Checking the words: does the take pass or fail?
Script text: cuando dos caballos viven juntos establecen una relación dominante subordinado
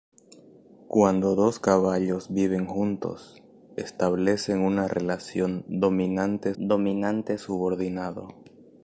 fail